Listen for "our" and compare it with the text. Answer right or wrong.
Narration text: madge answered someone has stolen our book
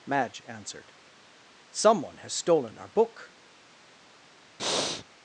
right